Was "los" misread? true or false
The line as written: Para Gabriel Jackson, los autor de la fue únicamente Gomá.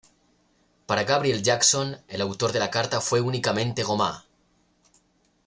true